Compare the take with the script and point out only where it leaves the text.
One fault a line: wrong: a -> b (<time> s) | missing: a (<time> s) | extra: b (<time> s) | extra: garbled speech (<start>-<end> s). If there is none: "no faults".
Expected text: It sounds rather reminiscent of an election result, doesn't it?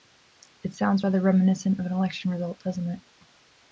no faults